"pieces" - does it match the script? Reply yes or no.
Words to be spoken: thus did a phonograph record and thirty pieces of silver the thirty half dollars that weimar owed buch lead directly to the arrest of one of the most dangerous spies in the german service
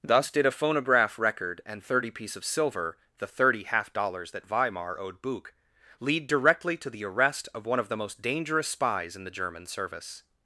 no